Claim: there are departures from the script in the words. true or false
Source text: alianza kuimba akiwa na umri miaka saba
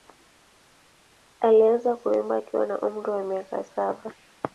true